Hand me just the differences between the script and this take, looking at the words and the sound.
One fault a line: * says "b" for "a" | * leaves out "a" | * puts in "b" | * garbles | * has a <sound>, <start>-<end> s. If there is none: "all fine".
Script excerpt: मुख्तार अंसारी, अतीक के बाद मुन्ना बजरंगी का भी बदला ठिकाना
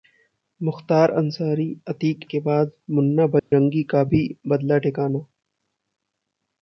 * has a dropout, 3.4-3.5 s